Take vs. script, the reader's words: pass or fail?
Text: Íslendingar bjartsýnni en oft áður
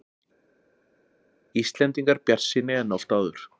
pass